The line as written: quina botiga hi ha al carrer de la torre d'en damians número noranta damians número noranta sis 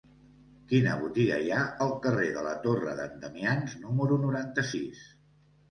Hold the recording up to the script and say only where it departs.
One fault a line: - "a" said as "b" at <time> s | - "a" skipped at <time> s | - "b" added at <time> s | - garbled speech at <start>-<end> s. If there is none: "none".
- "damians número noranta" skipped at 4.7 s